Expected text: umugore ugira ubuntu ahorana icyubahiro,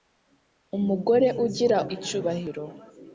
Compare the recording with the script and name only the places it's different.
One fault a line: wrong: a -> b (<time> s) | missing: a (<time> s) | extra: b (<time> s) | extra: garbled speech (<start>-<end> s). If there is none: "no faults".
missing: ubuntu ahorana (1.8 s)